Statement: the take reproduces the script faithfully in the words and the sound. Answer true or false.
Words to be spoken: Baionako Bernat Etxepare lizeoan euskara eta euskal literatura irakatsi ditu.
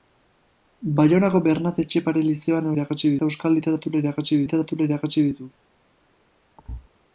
false